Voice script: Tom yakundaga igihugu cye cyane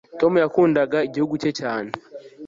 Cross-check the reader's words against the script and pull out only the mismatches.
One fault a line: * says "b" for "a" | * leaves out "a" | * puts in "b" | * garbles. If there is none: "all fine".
all fine